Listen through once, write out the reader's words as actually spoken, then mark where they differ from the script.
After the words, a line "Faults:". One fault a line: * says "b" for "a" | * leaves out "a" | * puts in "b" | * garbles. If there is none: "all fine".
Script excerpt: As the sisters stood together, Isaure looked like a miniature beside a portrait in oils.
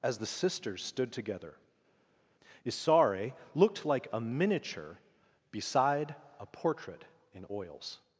As the sisters stood together, Isaure looked like a miniature beside a portrait in oils.
Faults:
all fine